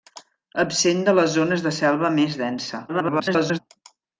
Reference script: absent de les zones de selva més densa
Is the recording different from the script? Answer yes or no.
yes